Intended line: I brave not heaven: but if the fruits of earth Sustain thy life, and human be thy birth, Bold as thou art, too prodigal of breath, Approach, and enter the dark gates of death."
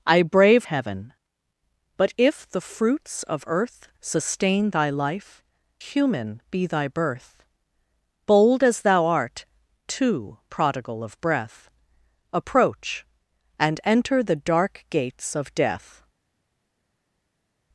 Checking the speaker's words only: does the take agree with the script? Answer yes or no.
no